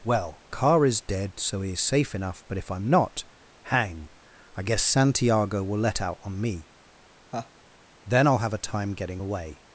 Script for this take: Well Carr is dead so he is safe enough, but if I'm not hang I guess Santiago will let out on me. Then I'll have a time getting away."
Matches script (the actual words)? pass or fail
pass